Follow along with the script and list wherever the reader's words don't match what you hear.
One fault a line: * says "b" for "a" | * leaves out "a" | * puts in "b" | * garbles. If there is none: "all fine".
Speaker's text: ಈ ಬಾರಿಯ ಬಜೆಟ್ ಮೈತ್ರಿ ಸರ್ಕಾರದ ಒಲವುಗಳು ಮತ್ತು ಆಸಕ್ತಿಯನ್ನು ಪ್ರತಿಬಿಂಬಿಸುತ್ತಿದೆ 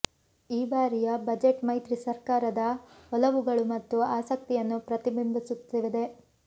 all fine